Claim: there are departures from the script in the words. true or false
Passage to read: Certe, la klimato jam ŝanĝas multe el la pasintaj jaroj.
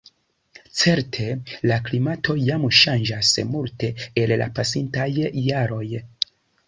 false